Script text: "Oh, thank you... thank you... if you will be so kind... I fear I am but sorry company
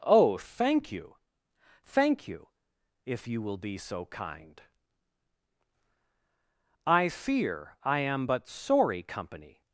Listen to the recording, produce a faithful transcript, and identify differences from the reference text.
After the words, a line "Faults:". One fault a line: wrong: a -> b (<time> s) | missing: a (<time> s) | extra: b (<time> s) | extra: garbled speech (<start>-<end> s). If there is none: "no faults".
"Oh, thank you... thank you... if you will be so kind... I fear I am but sorry company
Faults:
no faults